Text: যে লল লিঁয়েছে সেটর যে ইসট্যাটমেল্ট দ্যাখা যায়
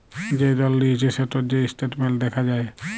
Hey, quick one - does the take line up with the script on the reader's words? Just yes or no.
yes